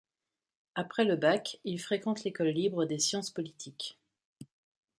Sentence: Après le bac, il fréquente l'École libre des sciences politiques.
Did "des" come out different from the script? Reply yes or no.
no